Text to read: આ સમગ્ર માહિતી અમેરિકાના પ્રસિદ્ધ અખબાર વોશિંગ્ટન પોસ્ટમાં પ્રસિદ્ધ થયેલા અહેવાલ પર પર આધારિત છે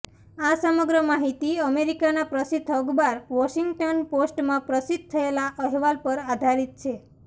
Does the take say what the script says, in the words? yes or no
no